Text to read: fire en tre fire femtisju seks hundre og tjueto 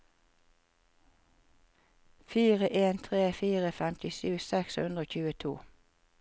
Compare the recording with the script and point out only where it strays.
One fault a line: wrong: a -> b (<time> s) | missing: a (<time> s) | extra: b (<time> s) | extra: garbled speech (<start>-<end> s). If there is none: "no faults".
no faults